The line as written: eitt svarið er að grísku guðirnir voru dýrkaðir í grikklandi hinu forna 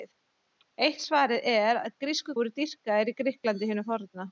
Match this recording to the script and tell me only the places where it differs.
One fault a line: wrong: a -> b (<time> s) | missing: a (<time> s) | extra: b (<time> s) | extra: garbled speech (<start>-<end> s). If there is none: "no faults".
missing: guðirnir (2.4 s)